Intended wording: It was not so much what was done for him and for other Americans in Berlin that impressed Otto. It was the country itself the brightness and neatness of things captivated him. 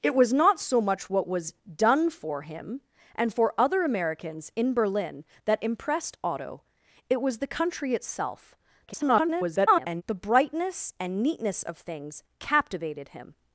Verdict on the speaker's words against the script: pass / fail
fail